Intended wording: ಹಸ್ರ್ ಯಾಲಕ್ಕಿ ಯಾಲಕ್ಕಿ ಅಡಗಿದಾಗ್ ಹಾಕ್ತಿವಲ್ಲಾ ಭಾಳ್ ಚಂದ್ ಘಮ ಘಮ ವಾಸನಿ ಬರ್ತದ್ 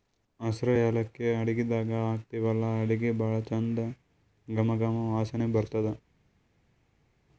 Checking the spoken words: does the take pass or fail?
fail